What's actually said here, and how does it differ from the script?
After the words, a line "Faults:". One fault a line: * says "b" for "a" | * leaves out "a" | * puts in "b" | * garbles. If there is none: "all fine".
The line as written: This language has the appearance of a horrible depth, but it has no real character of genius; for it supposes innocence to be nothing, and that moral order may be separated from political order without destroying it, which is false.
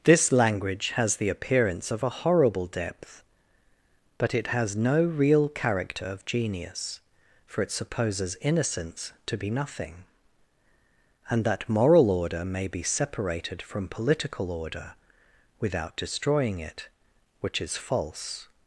This language has the appearance of a horrible depth, but it has no real character of genius; for it supposes innocence to be nothing, and that moral order may be separated from political order without destroying it, which is false.
Faults:
all fine